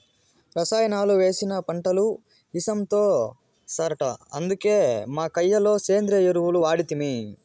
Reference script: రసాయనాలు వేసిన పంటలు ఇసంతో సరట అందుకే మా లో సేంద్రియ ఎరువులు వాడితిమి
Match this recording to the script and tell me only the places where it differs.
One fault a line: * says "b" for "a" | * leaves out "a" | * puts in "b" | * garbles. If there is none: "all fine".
* puts in "కయ్య"